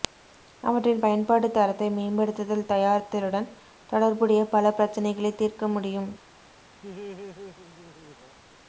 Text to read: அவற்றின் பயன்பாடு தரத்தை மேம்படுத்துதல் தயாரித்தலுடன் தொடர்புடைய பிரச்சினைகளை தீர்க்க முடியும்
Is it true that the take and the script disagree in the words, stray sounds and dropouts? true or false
true